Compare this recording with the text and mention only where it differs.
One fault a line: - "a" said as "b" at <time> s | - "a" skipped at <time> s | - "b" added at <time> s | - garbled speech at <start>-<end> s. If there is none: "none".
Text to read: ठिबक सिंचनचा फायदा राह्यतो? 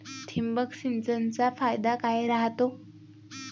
- "काय" added at 1.9 s